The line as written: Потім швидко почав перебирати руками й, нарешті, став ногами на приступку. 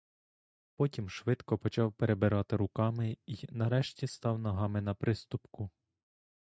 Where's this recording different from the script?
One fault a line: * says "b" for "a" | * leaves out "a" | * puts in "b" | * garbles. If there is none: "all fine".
all fine